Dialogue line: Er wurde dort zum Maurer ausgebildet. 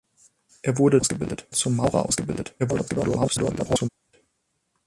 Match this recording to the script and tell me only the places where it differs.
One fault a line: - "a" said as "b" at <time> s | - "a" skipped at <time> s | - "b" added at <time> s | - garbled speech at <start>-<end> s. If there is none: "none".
- "dort" said as "ausgebildet" at 1.0 s
- garbled speech at 2.6-3.9 s